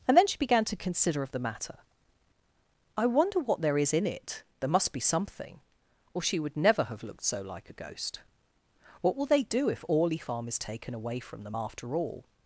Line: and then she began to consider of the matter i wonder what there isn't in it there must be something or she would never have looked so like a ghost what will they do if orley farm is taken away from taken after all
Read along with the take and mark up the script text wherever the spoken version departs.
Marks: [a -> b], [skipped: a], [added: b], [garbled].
and then she began to consider of the matter i wonder what there [isn't -> is] in it there must be something or she would never have looked so like a ghost what will they do if orley farm is taken away from [taken -> them] after all